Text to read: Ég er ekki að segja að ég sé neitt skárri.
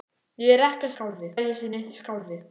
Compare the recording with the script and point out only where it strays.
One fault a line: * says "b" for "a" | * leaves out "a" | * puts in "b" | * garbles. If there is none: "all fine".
* says "skárri" for "segja"